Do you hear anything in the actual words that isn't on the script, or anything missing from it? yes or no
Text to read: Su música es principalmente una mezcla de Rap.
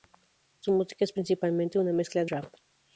no